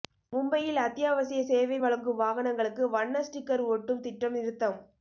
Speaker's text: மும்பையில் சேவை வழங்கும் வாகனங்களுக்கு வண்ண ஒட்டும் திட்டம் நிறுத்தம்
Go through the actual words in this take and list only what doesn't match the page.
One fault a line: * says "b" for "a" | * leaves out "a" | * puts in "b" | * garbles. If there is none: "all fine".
* puts in "அத்தியாவசிய"
* puts in "ஸ்டிக்கர்"